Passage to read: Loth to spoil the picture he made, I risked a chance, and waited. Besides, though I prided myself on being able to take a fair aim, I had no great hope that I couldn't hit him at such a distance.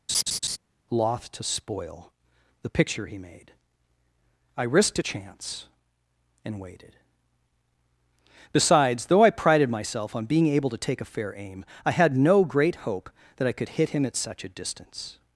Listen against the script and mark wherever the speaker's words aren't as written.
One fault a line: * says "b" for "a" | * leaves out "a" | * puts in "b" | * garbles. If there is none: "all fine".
* says "could" for "couldn't"